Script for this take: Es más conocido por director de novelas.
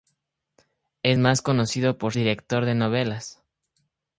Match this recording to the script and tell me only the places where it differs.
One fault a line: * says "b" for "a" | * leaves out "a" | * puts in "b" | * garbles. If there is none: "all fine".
all fine